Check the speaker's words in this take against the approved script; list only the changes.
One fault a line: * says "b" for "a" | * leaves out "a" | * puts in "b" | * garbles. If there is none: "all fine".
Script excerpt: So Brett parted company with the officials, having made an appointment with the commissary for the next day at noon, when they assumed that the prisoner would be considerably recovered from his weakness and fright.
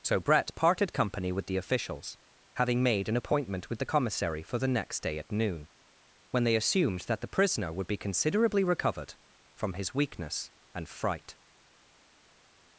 all fine